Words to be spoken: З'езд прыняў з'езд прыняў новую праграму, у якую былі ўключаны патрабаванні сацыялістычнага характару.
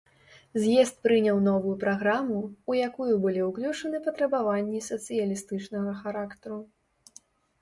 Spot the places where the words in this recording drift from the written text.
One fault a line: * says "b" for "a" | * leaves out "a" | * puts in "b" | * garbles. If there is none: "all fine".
* leaves out "з'езд прыняў"